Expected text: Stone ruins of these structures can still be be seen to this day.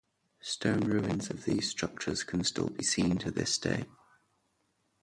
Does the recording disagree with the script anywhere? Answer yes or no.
yes